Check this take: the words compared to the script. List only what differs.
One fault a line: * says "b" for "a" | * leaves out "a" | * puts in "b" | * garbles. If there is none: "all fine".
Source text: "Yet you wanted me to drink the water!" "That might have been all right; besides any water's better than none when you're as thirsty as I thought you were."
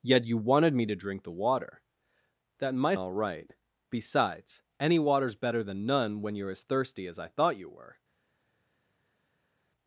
* leaves out "have been"